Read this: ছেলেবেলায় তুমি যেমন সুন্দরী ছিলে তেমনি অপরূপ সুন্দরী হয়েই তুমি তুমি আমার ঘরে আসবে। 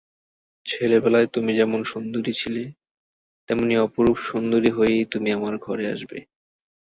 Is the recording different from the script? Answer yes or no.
yes